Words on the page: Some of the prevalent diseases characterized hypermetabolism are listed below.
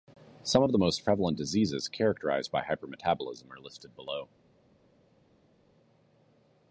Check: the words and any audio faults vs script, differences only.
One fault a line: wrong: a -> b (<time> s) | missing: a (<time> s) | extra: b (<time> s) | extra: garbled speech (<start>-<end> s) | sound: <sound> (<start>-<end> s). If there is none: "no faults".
extra: most (0.8 s)
extra: by (2.5 s)